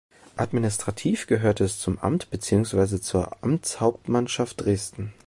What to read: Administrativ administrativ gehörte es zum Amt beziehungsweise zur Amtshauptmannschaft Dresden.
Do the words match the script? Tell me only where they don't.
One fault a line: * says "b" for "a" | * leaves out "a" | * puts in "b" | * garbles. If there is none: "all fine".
* leaves out "administrativ"